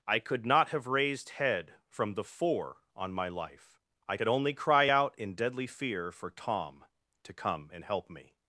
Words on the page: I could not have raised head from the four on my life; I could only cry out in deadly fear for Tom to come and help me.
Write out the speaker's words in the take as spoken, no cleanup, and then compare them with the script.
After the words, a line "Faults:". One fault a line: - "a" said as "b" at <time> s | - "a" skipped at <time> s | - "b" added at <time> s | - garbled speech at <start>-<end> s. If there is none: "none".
I could not have raised head from the four on my life; I could only cry out in deadly fear for Tom to come and help me.
Faults:
none